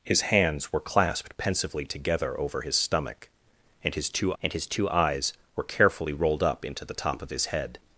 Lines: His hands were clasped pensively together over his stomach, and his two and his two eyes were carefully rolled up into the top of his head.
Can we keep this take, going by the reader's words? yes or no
yes